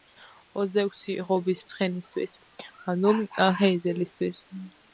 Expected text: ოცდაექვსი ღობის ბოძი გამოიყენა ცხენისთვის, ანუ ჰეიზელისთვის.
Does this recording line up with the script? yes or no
no